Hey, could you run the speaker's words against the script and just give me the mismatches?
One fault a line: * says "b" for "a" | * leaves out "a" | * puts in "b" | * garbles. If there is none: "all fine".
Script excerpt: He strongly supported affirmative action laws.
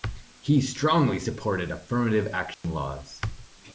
all fine